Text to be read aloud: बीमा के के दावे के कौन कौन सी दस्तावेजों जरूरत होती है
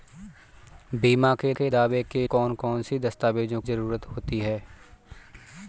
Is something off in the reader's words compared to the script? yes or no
no